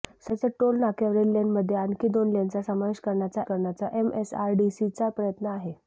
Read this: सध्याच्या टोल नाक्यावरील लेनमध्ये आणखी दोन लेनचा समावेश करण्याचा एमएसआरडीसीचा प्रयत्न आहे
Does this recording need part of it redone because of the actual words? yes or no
yes